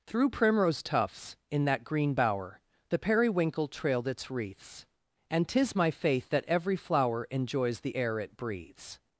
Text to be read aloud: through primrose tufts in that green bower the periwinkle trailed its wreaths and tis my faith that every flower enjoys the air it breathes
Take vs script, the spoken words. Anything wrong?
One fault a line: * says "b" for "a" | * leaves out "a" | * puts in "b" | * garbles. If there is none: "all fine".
all fine